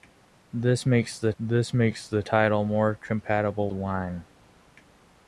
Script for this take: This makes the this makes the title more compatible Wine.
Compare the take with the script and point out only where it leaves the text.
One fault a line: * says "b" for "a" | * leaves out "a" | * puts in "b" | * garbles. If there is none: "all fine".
all fine